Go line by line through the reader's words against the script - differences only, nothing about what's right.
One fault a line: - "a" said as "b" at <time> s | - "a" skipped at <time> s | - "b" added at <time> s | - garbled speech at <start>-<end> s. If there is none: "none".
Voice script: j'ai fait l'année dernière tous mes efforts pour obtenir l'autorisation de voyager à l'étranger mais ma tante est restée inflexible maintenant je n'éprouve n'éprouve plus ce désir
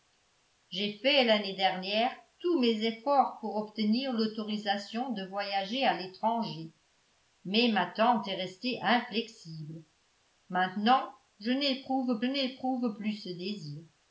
none